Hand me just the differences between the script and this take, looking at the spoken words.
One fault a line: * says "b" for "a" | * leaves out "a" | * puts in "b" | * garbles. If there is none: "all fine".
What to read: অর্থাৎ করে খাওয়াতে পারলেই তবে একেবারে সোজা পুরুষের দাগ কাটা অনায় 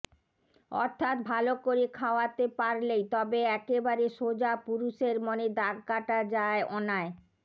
* puts in "ভালো"
* puts in "মনে"
* puts in "যায়"